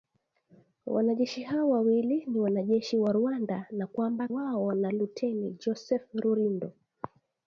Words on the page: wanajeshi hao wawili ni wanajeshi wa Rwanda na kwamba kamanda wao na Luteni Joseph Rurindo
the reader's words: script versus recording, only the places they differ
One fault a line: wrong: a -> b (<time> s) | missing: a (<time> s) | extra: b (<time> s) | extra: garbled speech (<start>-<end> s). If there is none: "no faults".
missing: kamanda (4.3 s)